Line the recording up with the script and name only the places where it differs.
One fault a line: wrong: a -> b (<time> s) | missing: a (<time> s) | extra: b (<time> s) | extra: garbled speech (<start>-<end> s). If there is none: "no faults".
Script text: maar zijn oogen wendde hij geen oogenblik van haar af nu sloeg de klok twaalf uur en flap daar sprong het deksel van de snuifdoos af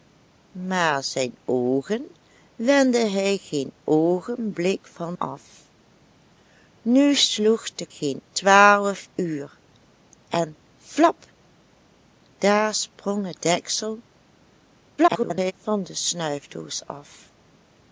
missing: haar (5.2 s)
wrong: klok -> geen (7.9 s)
extra: garbled speech (15.0-15.5 s)